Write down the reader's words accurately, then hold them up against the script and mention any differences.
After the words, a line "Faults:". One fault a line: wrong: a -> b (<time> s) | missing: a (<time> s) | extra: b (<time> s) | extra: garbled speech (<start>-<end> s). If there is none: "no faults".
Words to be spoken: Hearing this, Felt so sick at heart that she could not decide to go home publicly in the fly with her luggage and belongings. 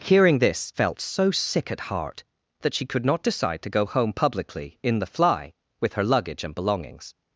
Hearing this, Felt so sick at heart that she could not decide to go home publicly in the fly with her luggage and belongings.
Faults:
no faults